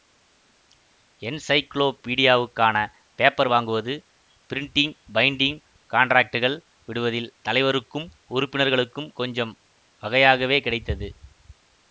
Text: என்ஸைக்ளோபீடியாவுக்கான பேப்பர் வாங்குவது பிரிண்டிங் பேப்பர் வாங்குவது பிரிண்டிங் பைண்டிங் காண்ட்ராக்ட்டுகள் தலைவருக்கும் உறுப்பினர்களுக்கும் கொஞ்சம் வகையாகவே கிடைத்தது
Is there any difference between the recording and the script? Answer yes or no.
yes